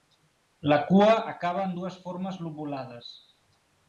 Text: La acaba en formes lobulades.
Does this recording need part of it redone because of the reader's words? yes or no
yes